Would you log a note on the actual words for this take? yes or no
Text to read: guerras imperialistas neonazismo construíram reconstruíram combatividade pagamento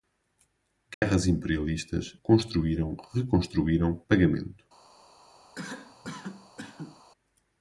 yes